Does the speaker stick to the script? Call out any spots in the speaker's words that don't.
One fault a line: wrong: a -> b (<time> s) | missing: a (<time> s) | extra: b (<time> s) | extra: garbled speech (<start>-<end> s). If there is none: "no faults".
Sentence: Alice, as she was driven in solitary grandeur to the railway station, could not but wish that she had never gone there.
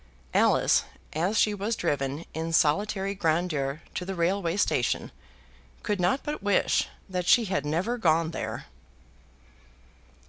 no faults